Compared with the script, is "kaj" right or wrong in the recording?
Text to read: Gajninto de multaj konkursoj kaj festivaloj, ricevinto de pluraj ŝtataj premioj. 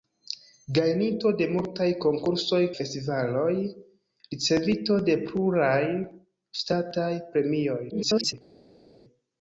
wrong